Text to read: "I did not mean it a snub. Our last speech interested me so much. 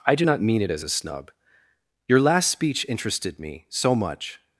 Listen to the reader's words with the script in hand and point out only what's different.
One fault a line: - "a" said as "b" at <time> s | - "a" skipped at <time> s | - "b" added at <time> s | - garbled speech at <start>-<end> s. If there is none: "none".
- "did" said as "do" at 0.1 s
- "as" added at 0.7 s
- "Our" said as "Your" at 2.1 s